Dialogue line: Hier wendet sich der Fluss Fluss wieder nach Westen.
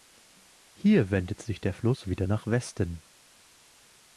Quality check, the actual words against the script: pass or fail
fail